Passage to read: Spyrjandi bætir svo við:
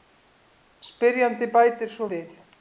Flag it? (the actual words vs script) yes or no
no